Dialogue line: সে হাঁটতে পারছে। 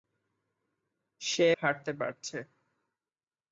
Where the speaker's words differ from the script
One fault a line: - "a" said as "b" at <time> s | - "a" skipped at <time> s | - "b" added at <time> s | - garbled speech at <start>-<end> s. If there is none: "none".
none